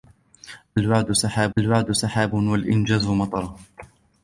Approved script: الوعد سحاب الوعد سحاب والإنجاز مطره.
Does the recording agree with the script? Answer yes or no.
yes